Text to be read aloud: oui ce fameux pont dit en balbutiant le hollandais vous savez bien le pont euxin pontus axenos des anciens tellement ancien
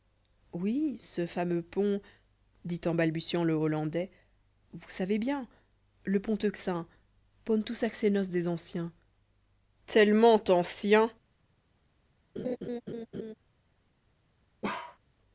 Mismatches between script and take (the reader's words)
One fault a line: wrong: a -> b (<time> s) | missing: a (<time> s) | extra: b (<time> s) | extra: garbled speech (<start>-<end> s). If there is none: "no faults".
no faults